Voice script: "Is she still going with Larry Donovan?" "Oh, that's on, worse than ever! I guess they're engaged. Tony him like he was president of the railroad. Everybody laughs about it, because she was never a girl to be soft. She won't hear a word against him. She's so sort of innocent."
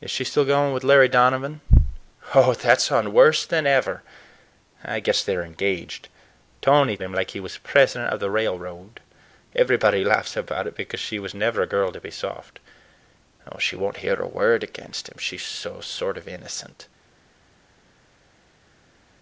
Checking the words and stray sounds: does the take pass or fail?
pass